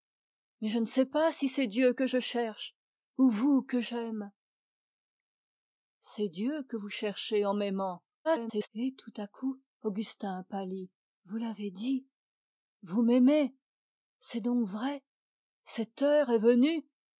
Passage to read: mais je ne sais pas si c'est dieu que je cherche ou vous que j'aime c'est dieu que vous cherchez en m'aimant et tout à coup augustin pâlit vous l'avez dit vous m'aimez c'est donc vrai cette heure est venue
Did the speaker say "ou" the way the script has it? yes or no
yes